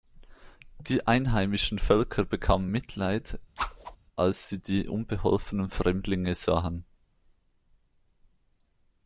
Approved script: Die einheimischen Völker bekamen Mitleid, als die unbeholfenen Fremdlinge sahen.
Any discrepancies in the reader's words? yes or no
yes